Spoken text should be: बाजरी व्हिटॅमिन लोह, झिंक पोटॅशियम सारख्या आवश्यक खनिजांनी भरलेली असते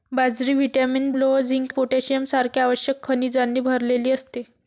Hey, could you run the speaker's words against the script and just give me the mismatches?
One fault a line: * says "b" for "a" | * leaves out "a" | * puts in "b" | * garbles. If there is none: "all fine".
all fine